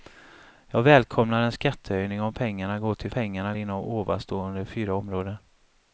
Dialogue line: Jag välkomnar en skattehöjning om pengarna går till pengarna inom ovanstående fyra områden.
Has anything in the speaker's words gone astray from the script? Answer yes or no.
no